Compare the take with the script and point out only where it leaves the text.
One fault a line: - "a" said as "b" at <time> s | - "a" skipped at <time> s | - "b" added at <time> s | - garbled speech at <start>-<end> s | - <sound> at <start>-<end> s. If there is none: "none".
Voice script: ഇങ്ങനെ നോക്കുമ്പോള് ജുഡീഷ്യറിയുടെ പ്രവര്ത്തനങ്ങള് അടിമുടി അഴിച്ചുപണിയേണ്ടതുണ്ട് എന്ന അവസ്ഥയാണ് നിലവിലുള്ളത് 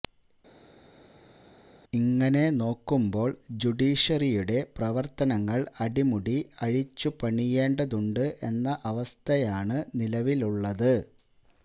none